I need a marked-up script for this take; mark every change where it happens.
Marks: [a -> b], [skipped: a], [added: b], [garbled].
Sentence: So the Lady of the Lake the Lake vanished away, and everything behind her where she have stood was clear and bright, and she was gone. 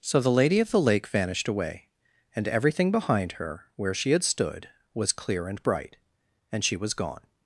So the Lady of the Lake [skipped: the Lake] vanished away, and everything behind her where she [have -> had] stood was clear and bright, and she was gone.